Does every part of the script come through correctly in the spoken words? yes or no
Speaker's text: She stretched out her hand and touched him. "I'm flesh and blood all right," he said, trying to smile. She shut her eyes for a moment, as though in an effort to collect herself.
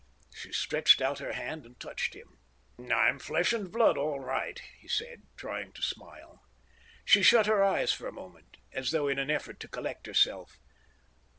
yes